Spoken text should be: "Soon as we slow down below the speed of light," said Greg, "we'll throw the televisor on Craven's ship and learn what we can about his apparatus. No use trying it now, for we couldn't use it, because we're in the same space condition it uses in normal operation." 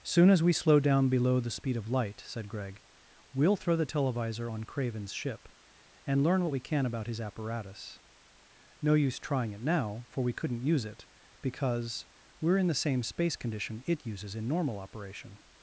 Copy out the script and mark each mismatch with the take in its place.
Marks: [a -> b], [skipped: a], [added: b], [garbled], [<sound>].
"Soon as we slow down below the speed of light," said Greg, "we'll throw the televisor on Craven's ship and learn what we can about his apparatus. No use trying it now, for we couldn't use it, because we're in the same space condition it uses in normal operation."